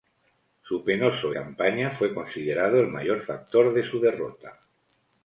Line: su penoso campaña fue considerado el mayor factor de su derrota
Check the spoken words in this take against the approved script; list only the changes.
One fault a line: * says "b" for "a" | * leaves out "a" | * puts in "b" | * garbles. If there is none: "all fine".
all fine